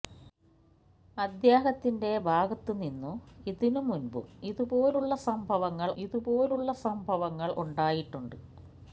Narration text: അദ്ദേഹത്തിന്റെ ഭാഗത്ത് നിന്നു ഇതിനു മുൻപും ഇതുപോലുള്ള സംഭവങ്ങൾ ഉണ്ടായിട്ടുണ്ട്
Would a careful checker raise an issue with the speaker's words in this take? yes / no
yes